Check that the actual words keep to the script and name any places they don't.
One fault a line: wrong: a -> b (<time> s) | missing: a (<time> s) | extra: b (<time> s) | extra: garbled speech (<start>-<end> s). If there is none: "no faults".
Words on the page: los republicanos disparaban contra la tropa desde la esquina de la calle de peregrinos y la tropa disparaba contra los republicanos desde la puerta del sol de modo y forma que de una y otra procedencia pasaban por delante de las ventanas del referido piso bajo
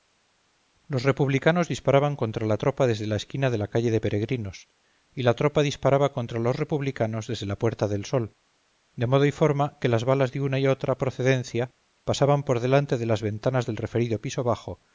extra: las balas (9.9 s)